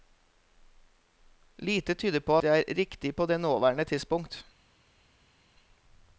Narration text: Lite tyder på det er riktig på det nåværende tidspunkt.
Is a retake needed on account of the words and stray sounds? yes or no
no